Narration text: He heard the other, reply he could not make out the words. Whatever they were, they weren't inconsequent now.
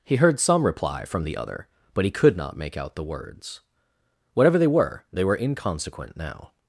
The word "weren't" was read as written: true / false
false